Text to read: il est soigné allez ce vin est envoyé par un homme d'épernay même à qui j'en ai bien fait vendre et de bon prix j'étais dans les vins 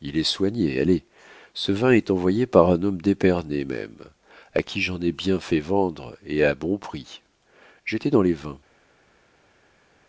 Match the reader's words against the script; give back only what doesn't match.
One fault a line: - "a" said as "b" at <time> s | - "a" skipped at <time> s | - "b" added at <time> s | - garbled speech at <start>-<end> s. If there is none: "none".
- "de" said as "à" at 6.4 s